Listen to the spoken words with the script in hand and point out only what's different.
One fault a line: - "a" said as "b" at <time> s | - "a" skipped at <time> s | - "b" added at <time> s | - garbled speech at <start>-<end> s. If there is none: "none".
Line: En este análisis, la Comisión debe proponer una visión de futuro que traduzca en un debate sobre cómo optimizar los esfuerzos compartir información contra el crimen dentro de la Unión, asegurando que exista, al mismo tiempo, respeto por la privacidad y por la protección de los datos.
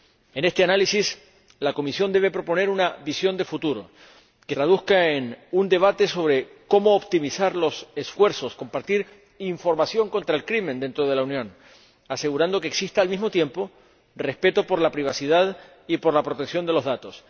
none